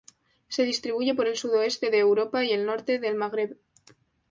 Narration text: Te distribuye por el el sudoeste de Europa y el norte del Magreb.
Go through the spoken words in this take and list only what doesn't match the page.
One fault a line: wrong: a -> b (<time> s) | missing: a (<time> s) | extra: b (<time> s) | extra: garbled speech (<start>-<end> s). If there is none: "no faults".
wrong: Te -> Se (0.5 s)
missing: el (1.4 s)